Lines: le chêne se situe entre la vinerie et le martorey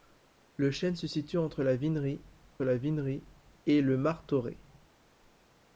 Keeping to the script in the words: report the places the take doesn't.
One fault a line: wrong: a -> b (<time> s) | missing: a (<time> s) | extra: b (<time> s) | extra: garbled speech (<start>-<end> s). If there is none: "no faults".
extra: la vinerie (2.6 s)